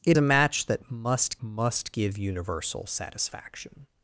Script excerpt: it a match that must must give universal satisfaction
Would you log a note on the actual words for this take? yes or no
no